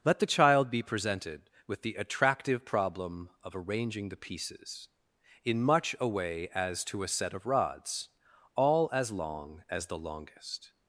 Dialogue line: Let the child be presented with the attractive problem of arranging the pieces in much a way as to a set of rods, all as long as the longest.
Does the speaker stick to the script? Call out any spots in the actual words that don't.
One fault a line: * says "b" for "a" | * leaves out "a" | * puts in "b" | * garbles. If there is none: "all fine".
all fine